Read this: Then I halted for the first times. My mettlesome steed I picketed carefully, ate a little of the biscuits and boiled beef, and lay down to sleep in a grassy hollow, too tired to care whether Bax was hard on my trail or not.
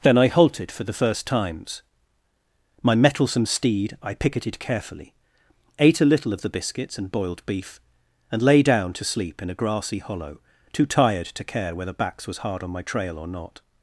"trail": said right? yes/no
yes